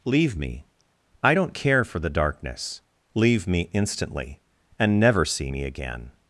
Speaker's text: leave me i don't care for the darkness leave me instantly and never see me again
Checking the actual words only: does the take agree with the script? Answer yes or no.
yes